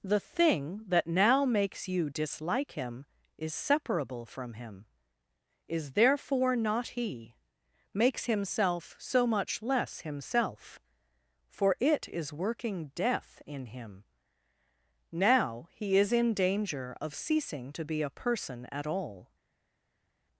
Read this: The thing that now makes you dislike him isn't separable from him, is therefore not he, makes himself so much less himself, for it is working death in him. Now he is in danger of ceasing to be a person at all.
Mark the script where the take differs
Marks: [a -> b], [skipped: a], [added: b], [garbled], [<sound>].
The thing that now makes you dislike him [isn't -> is] separable from him, is therefore not he, makes himself so much less himself, for it is working death in him. Now he is in danger of ceasing to be a person at all.